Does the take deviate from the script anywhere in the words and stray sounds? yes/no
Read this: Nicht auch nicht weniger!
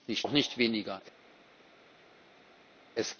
no